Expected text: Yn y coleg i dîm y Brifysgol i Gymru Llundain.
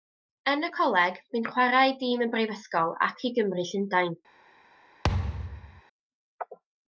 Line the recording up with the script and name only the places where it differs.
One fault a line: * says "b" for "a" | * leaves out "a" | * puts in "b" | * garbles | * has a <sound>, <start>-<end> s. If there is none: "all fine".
* puts in "bu'n chwarae"
* puts in "ac"
* has a thud, 5.0-5.8 s